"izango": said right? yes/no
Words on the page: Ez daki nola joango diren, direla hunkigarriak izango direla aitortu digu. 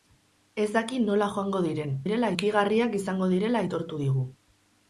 yes